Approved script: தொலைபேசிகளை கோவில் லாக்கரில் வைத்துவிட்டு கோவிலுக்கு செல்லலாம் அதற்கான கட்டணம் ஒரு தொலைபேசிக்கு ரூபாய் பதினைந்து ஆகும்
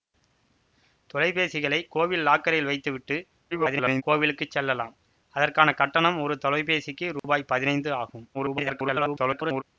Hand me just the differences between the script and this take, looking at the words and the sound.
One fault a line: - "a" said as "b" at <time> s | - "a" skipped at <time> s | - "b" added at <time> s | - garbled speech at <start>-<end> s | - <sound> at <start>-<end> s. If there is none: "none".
- garbled speech at 3.5-4.0 s
- dropout at 7.2-7.2 s
- garbled speech at 8.3-9.6 s